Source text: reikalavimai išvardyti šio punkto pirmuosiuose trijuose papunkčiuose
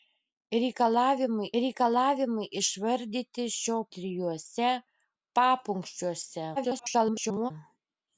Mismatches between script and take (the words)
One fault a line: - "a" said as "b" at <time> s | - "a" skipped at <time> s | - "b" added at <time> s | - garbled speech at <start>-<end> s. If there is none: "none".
- "reikalavimai" added at 1.6 s
- "punkto pirmuosiuose" skipped at 3.8 s
- garbled speech at 6.6-7.5 s